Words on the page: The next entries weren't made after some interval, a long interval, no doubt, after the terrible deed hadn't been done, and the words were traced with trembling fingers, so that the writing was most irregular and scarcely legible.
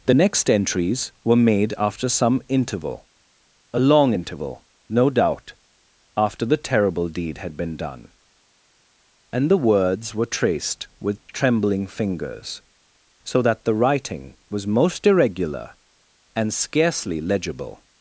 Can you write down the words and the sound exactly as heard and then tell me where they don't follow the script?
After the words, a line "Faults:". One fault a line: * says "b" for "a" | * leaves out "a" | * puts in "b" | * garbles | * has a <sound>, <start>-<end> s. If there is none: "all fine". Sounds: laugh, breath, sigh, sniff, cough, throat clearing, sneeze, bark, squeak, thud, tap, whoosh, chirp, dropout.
The next entries were made after some interval, a long interval, no doubt, after the terrible deed had been done, and the words were traced with trembling fingers, so that the writing was most irregular and scarcely legible.
Faults:
* says "were" for "weren't"
* says "had" for "hadn't"